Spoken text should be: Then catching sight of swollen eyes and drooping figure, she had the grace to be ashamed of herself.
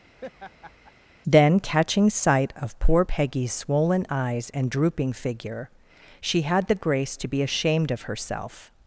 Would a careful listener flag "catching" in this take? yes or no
no